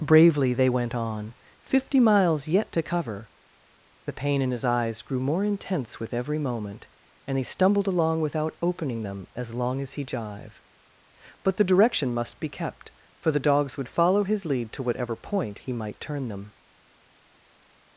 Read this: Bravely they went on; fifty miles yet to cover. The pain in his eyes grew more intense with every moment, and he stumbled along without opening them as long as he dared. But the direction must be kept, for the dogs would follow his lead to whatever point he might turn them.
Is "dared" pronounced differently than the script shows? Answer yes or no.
yes